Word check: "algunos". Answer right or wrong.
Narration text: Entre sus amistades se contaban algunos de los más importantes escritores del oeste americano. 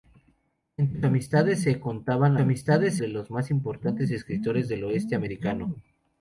wrong